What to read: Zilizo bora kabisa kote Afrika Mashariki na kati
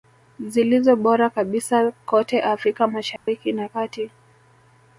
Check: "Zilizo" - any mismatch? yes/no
no